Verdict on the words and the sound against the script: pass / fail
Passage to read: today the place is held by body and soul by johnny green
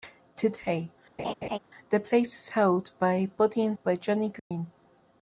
fail